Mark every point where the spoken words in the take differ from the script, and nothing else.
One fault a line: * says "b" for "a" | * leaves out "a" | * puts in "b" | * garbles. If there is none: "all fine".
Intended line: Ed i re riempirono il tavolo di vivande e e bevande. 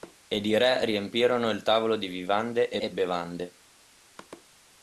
all fine